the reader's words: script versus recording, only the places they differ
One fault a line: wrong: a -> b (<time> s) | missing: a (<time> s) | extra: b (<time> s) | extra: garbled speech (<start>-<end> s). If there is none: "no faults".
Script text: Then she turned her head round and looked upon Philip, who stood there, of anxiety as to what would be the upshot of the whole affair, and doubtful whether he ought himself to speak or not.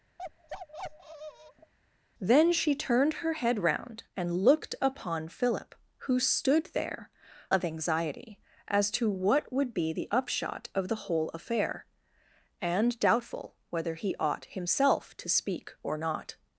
no faults